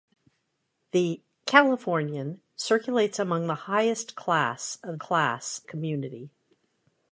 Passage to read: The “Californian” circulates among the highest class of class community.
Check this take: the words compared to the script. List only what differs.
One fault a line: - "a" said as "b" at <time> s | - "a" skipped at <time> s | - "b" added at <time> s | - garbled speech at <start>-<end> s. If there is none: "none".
none